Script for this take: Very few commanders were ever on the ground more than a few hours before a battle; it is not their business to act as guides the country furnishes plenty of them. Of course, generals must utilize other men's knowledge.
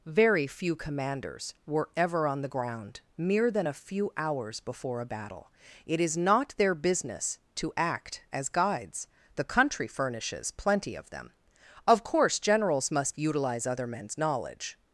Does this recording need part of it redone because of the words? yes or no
yes